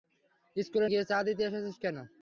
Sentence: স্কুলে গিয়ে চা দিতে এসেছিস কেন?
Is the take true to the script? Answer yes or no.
yes